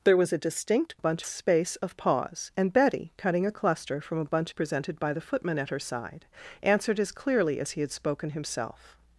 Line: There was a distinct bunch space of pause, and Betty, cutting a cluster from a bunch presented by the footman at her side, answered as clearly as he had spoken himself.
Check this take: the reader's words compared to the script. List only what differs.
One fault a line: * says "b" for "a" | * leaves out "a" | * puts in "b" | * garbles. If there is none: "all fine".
all fine